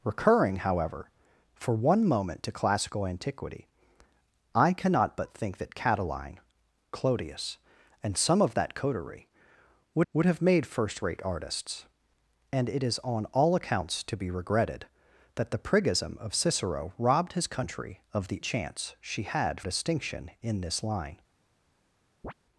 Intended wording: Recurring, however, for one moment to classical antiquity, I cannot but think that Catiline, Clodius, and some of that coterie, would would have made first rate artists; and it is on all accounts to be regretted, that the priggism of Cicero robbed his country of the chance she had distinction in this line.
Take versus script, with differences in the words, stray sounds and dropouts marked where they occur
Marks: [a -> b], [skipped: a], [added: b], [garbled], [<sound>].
Recurring, however, for one moment to classical antiquity, I cannot but think that Catiline, Clodius, and some of that coterie, would would have made first rate artists; and it is on all accounts to be regretted, that the priggism of Cicero robbed his country of the chance she had distinction in this line. [chirp]